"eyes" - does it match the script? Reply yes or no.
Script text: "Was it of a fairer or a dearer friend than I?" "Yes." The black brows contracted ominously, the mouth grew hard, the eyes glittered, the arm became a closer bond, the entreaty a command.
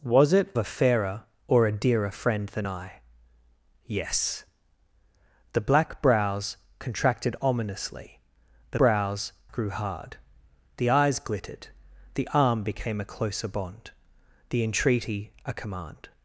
yes